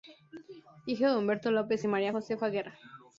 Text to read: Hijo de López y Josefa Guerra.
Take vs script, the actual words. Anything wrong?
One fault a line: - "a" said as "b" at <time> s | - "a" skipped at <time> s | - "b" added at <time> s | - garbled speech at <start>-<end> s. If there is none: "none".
- "Humberto" added at 1.1 s
- "María" added at 1.9 s